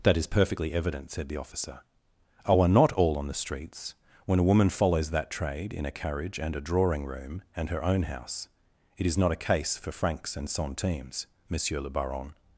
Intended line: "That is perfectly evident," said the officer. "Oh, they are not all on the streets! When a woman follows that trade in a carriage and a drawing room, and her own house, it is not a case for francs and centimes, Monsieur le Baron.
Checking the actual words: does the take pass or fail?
fail